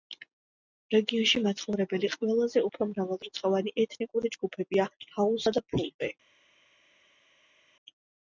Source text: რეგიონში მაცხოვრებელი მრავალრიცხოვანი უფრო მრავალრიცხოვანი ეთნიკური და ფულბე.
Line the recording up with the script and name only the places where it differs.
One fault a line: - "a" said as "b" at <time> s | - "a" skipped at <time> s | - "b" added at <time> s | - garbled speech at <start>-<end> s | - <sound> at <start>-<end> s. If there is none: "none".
- "მრავალრიცხოვანი" said as "ყველაზე" at 2.1 s
- "ჯგუფებია ჰაუსა" added at 4.4 s